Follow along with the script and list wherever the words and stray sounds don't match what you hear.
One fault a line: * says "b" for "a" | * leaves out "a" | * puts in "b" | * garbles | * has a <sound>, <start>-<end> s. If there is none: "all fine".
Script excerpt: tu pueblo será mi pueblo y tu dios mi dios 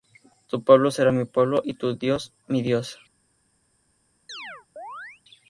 * has a chirp, 4.3-5.2 s